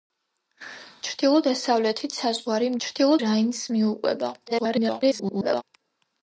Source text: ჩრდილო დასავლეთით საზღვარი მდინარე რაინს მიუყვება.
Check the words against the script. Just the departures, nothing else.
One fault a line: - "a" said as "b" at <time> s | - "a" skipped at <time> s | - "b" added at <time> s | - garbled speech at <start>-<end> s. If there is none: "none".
- "მდინარე" said as "ჩრდილო" at 2.8 s
- garbled speech at 4.5-5.6 s